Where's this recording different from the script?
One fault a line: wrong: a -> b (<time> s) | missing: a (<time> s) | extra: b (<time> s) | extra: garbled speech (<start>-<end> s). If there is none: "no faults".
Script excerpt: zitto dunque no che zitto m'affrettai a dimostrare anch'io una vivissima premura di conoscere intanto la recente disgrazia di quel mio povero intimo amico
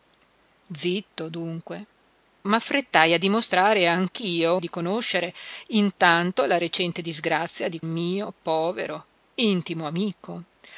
missing: no che zitto (1.9 s)
missing: una vivissima premura (4.6 s)
missing: quel (7.8 s)